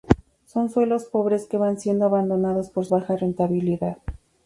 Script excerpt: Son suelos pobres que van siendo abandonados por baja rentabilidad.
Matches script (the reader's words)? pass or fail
pass